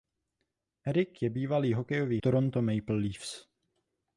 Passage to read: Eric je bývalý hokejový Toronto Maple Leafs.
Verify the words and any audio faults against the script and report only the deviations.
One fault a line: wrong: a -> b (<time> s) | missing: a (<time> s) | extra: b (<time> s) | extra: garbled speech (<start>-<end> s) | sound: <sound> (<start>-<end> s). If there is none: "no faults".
no faults